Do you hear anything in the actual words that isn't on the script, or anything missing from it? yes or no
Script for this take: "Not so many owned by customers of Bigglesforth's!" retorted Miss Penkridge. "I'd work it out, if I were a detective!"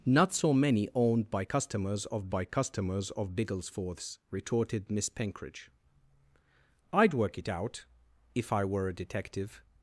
yes